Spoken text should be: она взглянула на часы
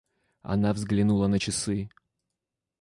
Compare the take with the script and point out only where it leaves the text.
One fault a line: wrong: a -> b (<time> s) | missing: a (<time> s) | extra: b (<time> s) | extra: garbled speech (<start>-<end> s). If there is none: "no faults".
no faults